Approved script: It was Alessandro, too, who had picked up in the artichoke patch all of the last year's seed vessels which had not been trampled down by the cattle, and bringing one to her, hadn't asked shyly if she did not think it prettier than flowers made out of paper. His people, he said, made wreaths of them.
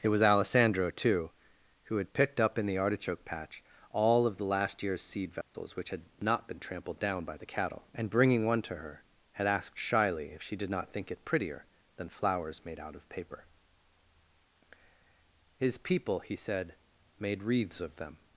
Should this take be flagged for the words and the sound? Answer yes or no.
yes